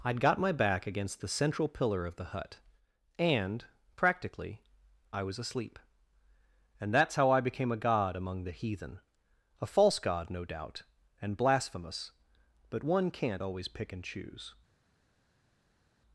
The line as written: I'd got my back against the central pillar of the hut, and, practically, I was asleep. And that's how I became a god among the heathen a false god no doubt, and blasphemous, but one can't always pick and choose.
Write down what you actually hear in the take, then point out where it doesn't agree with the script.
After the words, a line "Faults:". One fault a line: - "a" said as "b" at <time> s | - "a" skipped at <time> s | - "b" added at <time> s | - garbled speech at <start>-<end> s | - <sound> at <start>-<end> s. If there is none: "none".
I'd got my back against the central pillar of the hut, and, practically, I was asleep. And that's how I became a god among the heathen a false god no doubt, and blasphemous, but one can't always pick and choose.
Faults:
none